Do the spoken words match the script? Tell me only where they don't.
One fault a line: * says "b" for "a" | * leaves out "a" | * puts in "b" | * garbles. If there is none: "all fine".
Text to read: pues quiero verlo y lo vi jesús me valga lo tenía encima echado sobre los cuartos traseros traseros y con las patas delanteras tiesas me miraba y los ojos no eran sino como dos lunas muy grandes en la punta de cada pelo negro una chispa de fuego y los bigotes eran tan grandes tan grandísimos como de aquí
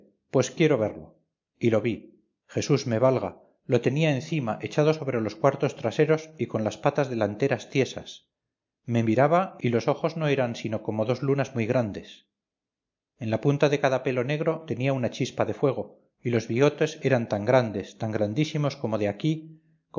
* leaves out "traseros"
* puts in "tenía"